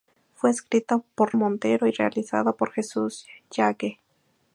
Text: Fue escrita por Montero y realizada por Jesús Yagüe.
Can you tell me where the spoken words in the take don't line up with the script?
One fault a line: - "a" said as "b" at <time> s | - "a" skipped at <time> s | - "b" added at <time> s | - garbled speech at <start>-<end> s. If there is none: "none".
none